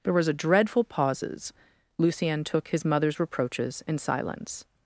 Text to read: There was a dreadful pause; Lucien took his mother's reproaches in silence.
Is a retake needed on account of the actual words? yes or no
yes